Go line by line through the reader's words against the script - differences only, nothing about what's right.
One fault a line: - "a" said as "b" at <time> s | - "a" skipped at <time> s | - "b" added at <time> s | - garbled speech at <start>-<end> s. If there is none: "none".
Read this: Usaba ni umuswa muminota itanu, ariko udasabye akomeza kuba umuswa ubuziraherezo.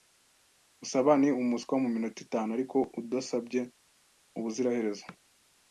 - "akomeza kuba umuswa" skipped at 3.6 s